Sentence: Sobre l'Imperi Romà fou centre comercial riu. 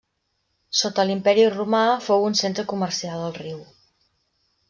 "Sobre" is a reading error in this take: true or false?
true